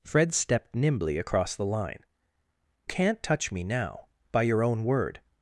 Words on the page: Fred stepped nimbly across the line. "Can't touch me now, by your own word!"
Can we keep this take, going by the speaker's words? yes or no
yes